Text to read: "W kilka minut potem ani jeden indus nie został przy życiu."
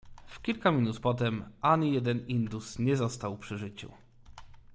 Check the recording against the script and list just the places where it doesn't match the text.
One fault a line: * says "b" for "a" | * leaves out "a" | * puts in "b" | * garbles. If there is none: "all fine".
all fine